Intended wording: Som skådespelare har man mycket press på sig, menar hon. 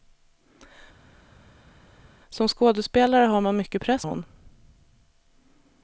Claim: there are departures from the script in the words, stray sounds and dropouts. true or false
true